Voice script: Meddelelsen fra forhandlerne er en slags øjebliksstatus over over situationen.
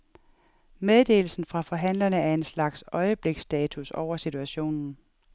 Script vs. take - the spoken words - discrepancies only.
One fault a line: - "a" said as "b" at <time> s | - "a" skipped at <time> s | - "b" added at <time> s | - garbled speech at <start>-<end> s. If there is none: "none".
- "over" skipped at 4.2 s